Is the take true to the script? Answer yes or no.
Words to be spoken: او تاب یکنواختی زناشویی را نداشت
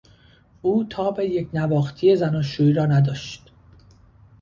yes